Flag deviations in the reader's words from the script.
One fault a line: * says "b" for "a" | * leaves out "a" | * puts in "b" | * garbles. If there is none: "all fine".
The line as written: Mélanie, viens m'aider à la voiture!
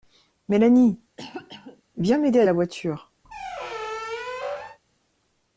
all fine